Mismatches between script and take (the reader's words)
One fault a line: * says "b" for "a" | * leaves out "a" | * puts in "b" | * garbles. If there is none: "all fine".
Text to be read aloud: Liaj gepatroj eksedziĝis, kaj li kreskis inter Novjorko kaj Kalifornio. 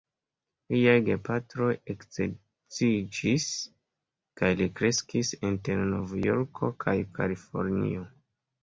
all fine